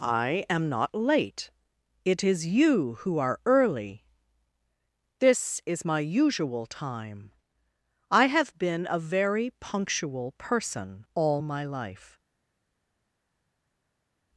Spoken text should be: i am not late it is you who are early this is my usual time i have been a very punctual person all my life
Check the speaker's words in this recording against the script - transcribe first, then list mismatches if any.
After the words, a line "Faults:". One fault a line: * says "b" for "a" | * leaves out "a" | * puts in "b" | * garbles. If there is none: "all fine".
i am not late it is you who are early this is my usual time i have been a very punctual person all my life
Faults:
all fine